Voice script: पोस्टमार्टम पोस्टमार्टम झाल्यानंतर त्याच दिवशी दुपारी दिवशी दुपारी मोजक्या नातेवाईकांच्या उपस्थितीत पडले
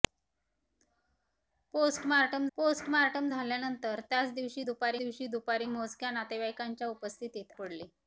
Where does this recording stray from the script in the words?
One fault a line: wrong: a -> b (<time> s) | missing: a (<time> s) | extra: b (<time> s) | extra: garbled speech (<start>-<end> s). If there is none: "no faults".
no faults